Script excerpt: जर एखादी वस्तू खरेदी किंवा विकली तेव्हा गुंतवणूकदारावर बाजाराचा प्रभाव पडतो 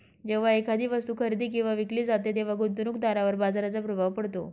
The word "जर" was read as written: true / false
false